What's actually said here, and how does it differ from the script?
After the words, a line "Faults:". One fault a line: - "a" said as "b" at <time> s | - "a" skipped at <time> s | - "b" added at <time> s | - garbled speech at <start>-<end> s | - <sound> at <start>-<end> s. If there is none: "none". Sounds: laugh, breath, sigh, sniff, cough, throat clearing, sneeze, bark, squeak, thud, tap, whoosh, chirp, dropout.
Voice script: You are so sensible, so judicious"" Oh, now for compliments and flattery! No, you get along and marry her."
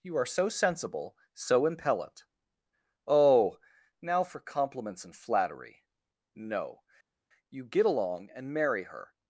You are so sensible, so impellent"" Oh, now for compliments and flattery! No, you get along and marry her."
Faults:
- "judicious" said as "impellent" at 1.7 s